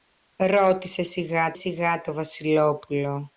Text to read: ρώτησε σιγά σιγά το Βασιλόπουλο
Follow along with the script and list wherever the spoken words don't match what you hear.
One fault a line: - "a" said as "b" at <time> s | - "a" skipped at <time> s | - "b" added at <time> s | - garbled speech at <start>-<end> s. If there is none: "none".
none